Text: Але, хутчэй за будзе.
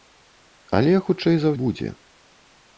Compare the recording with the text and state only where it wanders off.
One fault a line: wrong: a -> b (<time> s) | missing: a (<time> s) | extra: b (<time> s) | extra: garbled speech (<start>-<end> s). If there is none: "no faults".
no faults